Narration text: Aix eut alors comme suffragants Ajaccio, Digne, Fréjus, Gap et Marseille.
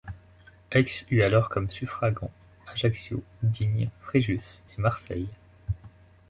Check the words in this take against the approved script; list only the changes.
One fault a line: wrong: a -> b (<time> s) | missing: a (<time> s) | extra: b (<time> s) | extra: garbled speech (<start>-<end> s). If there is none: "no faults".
missing: Gap (4.4 s)